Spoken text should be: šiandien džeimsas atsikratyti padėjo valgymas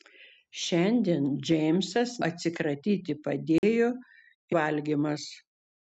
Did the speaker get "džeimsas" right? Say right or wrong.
right